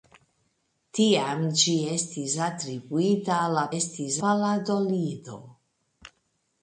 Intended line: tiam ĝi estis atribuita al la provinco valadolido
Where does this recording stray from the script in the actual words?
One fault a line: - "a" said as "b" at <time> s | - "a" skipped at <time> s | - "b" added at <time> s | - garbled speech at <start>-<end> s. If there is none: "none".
- "provinco" said as "estis" at 3.8 s